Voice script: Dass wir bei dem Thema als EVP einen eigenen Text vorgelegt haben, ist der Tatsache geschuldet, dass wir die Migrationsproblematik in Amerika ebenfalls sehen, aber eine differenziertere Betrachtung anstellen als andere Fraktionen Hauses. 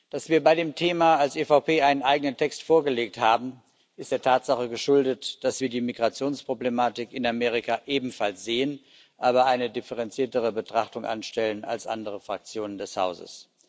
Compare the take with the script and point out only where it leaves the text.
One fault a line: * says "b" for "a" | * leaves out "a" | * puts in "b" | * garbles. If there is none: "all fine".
* puts in "des"